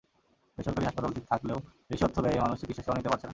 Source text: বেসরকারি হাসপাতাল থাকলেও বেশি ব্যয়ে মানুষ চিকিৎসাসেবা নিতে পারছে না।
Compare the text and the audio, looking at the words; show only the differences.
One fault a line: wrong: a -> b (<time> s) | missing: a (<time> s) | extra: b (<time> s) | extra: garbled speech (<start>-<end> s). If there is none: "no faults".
extra: অর্থ (2.0 s)